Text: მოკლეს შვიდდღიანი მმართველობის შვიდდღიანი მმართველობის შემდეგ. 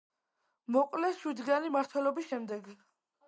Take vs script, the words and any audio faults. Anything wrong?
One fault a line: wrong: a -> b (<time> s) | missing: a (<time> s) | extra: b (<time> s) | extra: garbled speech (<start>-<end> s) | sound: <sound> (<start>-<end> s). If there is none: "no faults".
missing: შვიდდღიანი მმართველობის (2.3 s)